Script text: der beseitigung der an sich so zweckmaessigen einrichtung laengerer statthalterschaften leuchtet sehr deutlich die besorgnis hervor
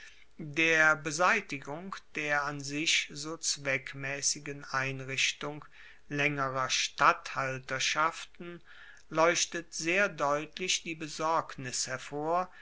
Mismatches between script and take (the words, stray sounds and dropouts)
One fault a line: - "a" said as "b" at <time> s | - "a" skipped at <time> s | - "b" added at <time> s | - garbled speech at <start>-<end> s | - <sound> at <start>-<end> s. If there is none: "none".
none